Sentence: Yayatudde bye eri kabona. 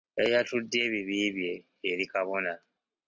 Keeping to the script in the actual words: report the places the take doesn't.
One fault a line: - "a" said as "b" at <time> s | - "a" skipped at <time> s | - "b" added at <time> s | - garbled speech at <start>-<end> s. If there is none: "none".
- "ebibi" added at 0.9 s